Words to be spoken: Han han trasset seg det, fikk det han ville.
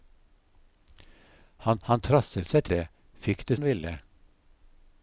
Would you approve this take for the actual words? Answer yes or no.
yes